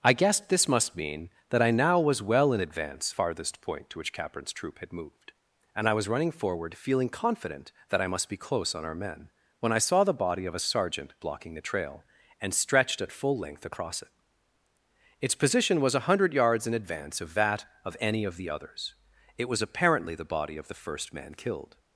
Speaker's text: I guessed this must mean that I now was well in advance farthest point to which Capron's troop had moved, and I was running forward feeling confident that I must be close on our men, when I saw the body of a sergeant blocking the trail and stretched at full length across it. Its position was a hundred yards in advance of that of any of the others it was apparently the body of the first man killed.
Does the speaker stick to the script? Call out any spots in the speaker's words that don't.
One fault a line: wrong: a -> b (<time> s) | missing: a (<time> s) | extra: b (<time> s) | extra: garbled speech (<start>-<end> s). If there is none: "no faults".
no faults